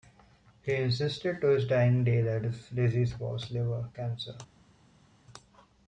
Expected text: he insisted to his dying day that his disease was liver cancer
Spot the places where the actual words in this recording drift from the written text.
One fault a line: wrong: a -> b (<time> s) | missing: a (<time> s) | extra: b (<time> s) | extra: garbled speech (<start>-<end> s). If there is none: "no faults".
no faults